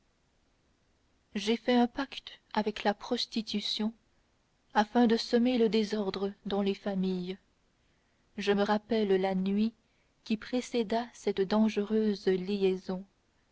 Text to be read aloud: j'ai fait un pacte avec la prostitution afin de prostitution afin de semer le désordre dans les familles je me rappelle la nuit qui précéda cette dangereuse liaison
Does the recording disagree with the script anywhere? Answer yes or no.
yes